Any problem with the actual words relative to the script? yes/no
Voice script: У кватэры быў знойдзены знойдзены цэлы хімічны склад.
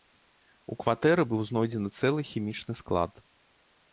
yes